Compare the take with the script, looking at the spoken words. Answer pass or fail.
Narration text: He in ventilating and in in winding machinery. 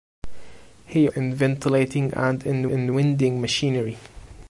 pass